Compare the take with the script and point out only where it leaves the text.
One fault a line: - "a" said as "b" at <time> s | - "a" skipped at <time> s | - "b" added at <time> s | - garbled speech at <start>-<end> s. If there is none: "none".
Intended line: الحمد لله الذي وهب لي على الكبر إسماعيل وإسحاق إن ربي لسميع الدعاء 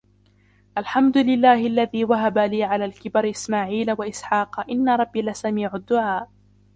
none